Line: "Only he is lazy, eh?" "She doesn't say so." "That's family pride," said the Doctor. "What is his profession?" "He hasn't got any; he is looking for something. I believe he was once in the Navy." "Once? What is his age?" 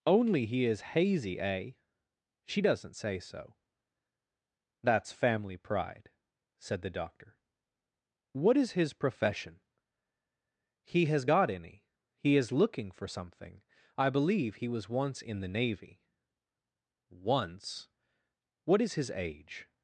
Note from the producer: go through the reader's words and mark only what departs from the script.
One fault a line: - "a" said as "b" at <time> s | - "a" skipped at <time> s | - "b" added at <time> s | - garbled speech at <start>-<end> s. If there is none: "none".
- "lazy" said as "hazy" at 0.8 s
- "hasn't" said as "has" at 11.1 s